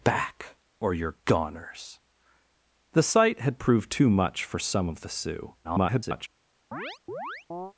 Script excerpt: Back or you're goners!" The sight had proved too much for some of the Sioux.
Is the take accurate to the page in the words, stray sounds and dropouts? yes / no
no